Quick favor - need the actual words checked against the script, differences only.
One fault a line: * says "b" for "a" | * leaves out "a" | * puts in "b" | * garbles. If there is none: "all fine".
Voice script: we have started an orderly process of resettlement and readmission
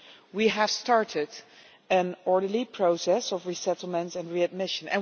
all fine